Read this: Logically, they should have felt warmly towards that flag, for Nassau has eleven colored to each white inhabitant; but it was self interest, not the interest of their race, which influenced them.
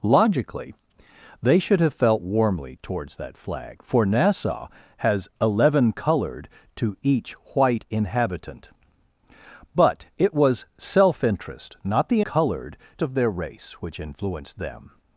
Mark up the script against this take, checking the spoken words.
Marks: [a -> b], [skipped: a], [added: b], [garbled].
Logically, they should have felt warmly towards that flag, for Nassau has eleven colored to each white inhabitant; but it was self interest, not the [interest -> colored] of their race, which influenced them.